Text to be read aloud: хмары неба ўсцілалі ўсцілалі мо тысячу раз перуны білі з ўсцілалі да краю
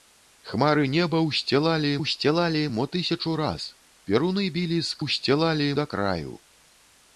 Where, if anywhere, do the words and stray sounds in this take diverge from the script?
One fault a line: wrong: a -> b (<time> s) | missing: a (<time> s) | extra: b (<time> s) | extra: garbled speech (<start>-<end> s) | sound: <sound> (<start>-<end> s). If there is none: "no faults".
no faults